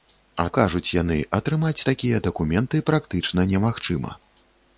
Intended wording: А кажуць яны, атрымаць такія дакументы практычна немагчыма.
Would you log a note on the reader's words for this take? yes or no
no